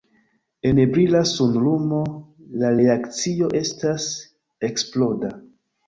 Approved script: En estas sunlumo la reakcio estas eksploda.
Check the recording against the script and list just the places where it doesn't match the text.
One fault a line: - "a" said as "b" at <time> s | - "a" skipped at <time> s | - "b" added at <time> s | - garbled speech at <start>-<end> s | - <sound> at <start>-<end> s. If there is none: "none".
- "estas" said as "brila" at 0.9 s